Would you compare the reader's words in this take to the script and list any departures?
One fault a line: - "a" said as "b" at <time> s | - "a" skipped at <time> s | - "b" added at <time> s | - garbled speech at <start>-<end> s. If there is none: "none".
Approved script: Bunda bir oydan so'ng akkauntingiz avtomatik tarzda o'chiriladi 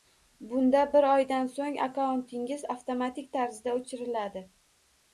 none